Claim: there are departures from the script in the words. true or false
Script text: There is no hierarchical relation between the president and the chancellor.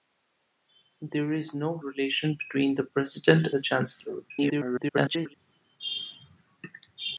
true